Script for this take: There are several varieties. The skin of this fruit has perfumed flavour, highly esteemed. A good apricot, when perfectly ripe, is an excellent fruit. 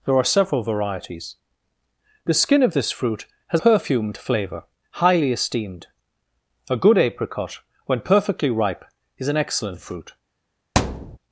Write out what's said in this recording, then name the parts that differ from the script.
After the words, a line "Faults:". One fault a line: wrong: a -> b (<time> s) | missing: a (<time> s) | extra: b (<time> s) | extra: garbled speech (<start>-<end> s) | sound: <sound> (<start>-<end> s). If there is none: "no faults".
There are several varieties. The skin of this fruit has perfumed flavour, highly esteemed. A good apricot, when perfectly ripe, is an excellent fruit.
Faults:
sound: thud (10.8-11.2 s)